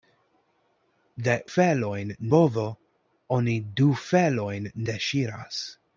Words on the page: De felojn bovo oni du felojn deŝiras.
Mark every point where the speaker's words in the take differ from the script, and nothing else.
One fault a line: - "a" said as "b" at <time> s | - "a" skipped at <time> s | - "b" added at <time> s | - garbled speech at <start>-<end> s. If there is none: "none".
none